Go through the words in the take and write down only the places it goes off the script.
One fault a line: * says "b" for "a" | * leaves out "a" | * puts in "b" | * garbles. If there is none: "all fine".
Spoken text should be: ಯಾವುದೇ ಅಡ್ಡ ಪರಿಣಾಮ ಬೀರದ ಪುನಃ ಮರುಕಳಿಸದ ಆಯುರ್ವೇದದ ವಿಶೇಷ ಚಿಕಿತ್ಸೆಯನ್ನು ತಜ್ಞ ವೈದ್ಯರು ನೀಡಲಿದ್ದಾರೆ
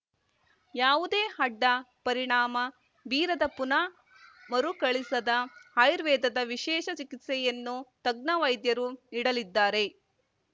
all fine